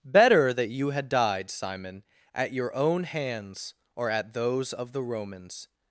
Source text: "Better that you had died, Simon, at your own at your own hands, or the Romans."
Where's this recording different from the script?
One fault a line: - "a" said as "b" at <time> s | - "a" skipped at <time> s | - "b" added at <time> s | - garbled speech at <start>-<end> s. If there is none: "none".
- "at your own hands or" said as "hands or at those of" at 3.0 s